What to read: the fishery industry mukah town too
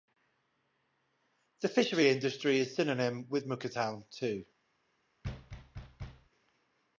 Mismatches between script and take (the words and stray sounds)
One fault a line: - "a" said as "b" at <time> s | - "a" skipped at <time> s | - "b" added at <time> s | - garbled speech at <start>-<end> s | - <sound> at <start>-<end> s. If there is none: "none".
- "is synonym with" added at 2.6 s
- thud at 5.2-6.3 s